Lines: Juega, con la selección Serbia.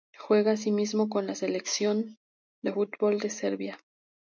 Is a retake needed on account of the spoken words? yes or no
yes